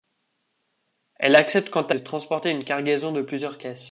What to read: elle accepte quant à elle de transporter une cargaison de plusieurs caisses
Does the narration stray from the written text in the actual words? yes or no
yes